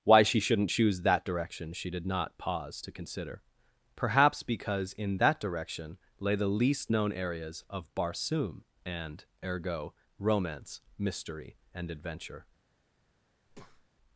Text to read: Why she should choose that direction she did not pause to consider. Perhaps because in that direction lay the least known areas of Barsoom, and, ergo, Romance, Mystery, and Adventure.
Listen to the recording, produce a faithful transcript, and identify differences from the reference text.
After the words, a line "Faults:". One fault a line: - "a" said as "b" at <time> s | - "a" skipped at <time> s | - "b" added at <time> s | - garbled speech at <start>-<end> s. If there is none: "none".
Why she shouldn't choose that direction she did not pause to consider. Perhaps because in that direction lay the least known areas of Barsoom, and, ergo, Romance, Mystery, and Adventure.
Faults:
- "should" said as "shouldn't" at 0.4 s